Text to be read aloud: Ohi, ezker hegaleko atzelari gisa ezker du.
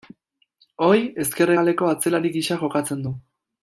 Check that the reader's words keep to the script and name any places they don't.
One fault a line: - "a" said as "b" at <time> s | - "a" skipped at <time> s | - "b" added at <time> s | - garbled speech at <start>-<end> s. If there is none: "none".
- "ezker" said as "jokatzen" at 2.7 s